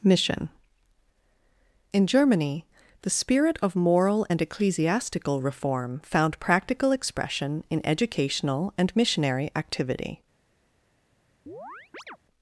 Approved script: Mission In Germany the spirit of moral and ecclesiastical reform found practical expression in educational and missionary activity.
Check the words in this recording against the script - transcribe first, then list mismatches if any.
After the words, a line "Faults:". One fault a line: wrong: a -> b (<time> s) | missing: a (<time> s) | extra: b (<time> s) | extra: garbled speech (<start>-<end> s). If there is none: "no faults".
Mission In Germany the spirit of moral and ecclesiastical reform found practical expression in educational and missionary activity.
Faults:
no faults